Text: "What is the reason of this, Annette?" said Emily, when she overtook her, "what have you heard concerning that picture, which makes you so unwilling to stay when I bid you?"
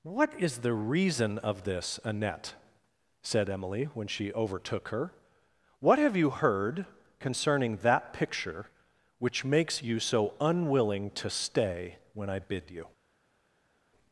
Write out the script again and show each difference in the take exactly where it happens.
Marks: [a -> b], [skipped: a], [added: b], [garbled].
"What is the reason of this, Annette?" said Emily, when she overtook her, "what have you heard concerning that picture, which makes you so unwilling to stay when I bid you?"